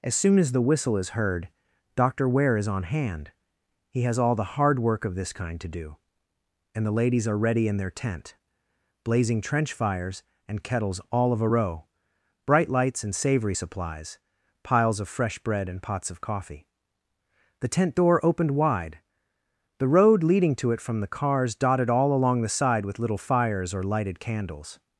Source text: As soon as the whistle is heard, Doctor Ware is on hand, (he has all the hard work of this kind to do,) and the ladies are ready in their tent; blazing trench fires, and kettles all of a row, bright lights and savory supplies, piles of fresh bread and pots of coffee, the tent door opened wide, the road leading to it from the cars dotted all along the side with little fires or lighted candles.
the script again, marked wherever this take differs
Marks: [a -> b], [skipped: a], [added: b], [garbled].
As soon as the whistle is heard, Doctor Ware is on hand, (he has all the hard work of this kind to do,) and the ladies are ready in their tent; blazing trench fires, and kettles all of a row, bright lights and savory supplies, piles of fresh bread and pots of coffee, the tent door opened wide, the road leading to it from the cars dotted all along the side with little fires or lighted candles.